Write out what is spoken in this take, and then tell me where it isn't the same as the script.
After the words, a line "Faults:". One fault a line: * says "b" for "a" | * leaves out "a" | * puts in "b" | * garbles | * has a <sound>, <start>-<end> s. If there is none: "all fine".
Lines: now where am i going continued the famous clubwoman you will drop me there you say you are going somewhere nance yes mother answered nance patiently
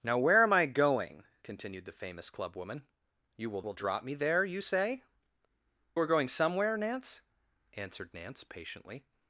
now where am i going continued the famous clubwoman you will will drop me there you say are going somewhere nance answered nance patiently
Faults:
* puts in "will"
* leaves out "you"
* leaves out "yes mother"